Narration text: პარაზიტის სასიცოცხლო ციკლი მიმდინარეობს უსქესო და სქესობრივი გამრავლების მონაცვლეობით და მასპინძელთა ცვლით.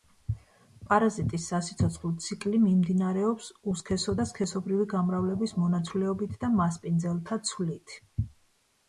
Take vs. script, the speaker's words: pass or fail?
pass